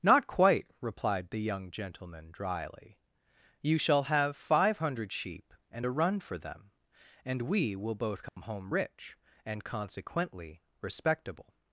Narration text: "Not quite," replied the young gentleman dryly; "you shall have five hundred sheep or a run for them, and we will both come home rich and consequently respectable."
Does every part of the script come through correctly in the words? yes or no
no